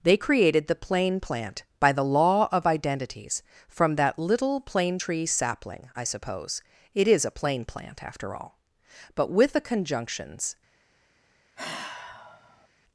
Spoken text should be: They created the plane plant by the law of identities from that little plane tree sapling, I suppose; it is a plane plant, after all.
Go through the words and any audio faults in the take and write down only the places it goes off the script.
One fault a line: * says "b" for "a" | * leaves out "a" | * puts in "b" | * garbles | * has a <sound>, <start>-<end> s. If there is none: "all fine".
* puts in "But with the conjunctions"
* has a sigh, 11.6-12.7 s